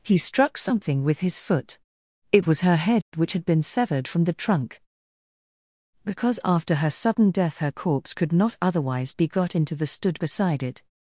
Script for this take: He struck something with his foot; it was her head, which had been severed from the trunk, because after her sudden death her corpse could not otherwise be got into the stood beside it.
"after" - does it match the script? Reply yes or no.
yes